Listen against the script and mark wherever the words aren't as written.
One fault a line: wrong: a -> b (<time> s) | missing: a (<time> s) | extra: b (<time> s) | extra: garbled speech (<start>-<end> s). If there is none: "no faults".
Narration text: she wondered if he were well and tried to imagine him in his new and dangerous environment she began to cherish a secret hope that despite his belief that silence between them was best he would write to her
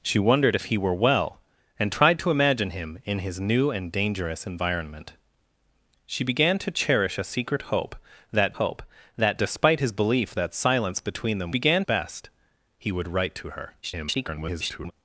extra: hope that (8.5 s)
wrong: was -> began (11.5 s)
extra: garbled speech (13.8-14.9 s)